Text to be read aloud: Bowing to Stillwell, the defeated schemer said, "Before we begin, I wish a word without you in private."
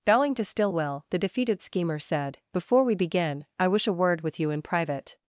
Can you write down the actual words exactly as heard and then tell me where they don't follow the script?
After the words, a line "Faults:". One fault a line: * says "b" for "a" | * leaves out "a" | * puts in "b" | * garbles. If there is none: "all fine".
Bowing to Stillwell, the defeated schemer said, "Before we begin, I wish a word with you in private."
Faults:
* says "with" for "without"